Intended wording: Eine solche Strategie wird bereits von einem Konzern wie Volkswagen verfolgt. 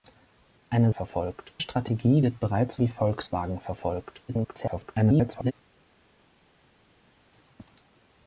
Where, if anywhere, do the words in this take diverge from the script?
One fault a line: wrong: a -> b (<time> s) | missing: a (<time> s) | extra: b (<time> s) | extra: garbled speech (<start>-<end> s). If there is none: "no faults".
wrong: solche -> verfolgt (0.9 s)
missing: von einem Konzern (2.8 s)
extra: garbled speech (4.3-5.5 s)